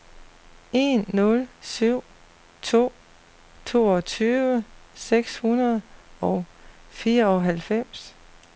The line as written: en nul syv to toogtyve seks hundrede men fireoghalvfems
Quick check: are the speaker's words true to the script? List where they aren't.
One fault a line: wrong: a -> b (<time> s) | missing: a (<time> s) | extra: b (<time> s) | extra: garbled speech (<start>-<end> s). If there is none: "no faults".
wrong: men -> og (6.2 s)